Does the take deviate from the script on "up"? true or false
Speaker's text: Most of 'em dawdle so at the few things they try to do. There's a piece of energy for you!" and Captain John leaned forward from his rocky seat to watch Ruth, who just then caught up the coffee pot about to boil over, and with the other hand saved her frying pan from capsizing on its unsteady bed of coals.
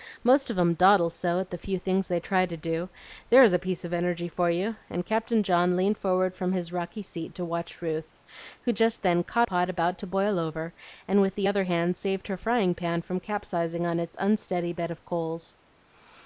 true